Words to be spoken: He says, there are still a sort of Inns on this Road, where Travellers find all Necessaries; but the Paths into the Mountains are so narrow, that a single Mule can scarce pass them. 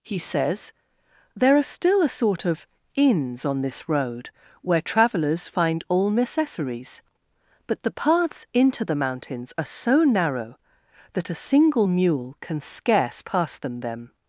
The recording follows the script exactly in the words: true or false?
false